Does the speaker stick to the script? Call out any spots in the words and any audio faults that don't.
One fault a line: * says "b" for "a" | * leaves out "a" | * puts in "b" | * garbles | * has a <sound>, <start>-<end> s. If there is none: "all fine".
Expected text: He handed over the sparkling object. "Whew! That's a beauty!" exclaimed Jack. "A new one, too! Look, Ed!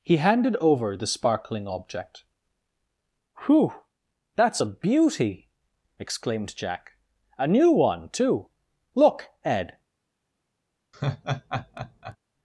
* has a laugh, 10.9-12.2 s